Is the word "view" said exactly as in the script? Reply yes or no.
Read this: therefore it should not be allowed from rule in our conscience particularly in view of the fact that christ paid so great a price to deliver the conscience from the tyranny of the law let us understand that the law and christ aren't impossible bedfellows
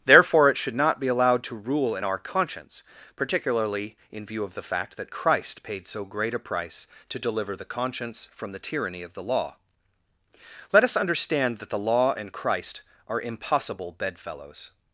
yes